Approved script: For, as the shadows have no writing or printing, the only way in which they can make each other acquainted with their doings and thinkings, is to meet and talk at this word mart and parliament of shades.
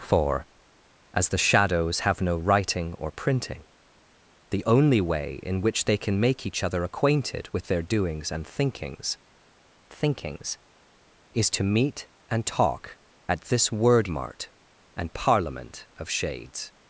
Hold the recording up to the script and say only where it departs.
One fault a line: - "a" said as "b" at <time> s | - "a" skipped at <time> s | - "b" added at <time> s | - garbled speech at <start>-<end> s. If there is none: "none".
- "thinkings" added at 9.9 s